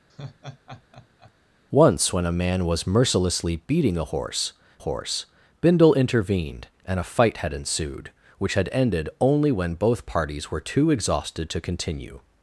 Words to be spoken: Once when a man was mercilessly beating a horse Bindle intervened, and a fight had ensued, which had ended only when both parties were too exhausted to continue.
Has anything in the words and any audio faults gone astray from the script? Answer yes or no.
yes